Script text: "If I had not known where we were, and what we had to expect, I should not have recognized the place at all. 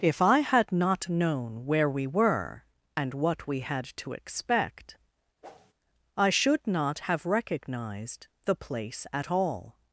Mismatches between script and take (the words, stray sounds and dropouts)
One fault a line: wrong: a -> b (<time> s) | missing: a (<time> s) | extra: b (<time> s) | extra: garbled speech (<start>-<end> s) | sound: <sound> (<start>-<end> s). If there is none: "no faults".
sound: whoosh (5.4-5.7 s)